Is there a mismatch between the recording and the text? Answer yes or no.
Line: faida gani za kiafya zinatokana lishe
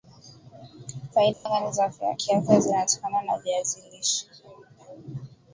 yes